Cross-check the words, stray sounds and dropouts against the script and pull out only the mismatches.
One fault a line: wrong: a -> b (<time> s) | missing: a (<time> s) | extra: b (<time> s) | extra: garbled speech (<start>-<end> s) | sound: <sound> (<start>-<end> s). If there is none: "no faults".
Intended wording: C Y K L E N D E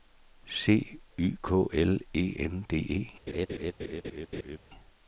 sound: laugh (3.3-4.6 s)